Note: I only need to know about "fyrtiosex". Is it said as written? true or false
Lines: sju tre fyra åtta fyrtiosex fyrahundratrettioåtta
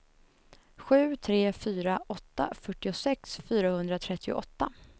true